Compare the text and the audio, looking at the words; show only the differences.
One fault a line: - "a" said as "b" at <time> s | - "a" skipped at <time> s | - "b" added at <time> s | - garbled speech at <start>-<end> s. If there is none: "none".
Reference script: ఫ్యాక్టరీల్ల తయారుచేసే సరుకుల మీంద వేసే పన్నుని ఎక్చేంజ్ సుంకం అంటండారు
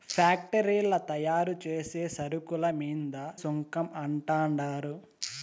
- "వేసే పన్నుని ఎక్చేంజ్" skipped at 3.1 s